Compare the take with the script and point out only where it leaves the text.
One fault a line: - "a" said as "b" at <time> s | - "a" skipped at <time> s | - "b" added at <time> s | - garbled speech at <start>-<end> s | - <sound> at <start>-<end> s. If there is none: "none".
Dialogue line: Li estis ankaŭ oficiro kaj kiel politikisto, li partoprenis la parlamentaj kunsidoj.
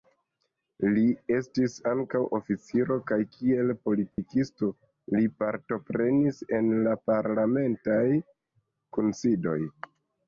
- dropout at 4.1-4.2 s
- "en" added at 6.6 s